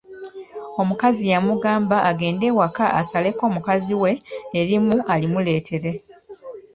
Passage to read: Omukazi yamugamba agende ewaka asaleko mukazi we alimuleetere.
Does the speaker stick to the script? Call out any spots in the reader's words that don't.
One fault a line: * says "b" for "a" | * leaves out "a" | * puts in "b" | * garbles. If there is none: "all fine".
* puts in "erimu"